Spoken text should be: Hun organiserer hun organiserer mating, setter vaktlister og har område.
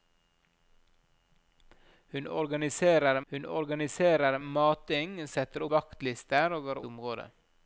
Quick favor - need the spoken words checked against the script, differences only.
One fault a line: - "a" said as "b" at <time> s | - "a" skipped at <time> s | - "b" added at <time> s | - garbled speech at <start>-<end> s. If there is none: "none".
none